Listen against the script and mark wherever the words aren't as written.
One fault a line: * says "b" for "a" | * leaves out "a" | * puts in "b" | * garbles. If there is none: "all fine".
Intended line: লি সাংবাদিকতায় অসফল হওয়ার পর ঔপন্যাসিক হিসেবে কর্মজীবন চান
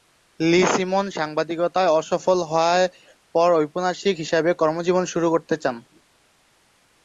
* puts in "সিমন"
* puts in "শুরু করতে"